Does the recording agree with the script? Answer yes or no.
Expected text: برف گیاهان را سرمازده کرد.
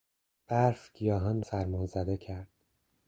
no